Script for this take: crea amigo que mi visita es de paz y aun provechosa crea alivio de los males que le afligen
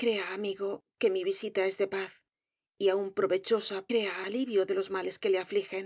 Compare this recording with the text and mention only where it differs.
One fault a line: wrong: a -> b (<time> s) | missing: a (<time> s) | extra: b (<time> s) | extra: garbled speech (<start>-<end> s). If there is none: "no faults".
no faults